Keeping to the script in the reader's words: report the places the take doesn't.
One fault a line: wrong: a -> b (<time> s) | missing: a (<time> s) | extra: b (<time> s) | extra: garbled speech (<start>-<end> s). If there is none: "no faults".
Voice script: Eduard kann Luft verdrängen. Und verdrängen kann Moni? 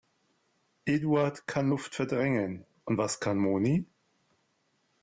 wrong: verdrängen -> was (3.0 s)